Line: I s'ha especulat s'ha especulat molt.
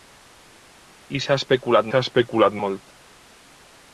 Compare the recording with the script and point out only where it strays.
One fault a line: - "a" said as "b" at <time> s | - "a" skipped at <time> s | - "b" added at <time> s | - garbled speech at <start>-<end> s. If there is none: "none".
none